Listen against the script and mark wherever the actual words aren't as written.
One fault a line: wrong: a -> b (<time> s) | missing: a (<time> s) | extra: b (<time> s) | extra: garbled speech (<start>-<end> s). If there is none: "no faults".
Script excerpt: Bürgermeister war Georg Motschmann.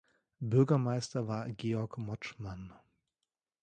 no faults